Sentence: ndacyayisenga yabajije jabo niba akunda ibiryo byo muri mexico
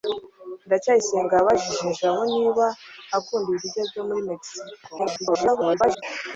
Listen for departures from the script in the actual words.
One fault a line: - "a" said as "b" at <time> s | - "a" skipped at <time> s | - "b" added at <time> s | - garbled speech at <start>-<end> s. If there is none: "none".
- garbled speech at 5.0-6.0 s